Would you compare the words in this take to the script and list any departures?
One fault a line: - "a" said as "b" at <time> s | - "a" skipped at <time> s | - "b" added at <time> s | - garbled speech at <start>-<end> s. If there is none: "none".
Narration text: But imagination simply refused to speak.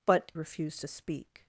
- "imagination simply" skipped at 0.3 s